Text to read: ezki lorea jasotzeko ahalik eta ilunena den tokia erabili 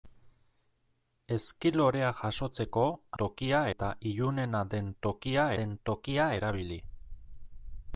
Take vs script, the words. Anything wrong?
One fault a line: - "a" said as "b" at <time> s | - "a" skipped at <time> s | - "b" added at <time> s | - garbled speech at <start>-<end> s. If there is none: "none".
- "ahalik" said as "tokia" at 3.2 s
- "den tokia" added at 5.6 s